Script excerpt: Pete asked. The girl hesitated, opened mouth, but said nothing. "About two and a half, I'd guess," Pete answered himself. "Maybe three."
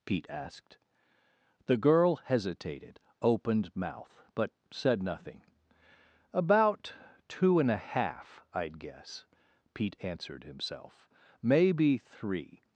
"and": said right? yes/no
yes